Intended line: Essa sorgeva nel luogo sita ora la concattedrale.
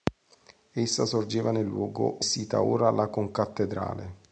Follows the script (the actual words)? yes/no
yes